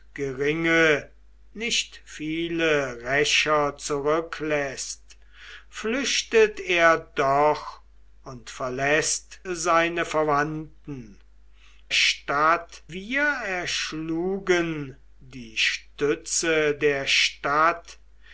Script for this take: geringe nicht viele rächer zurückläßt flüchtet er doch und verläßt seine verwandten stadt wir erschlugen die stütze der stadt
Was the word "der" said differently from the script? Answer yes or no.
no